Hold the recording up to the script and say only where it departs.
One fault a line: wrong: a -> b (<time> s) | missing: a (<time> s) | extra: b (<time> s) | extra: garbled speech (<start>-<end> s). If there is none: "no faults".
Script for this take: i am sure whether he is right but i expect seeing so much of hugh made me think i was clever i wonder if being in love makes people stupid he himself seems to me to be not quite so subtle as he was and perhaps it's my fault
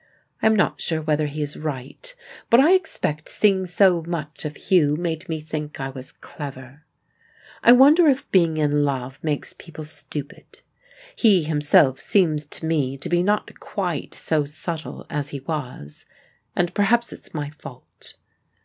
extra: not (0.6 s)